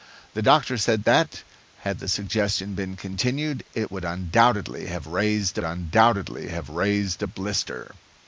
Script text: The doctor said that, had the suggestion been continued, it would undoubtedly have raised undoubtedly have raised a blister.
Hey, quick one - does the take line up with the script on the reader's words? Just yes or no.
yes